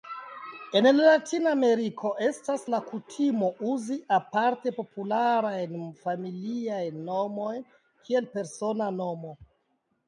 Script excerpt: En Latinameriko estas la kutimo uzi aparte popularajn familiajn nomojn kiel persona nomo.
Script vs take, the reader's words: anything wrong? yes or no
no